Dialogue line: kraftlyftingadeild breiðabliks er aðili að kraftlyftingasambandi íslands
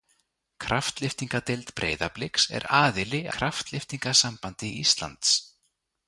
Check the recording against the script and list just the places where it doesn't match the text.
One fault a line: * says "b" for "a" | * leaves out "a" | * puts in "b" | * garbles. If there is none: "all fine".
* leaves out "að"